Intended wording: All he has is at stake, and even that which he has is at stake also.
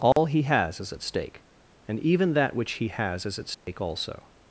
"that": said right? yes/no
yes